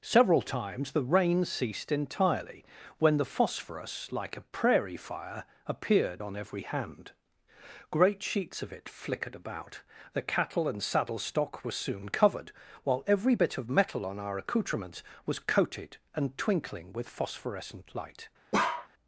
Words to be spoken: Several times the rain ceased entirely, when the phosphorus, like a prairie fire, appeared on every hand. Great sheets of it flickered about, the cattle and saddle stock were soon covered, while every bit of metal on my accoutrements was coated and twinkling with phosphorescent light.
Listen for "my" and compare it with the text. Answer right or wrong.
wrong